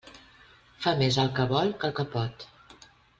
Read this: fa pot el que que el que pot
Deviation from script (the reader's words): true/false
true